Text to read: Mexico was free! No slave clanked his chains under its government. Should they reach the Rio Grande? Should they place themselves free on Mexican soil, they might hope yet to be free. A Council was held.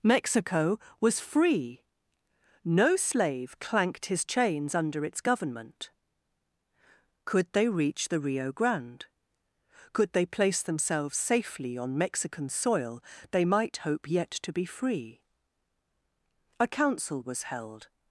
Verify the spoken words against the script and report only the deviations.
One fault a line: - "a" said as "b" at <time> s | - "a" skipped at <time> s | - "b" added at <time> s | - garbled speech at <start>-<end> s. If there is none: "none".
- "Should" said as "Could" at 7.2 s
- "Should" said as "Could" at 9.9 s
- "free" said as "safely" at 11.2 s